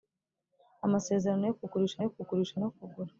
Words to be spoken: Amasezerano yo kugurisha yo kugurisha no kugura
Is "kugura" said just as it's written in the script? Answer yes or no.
yes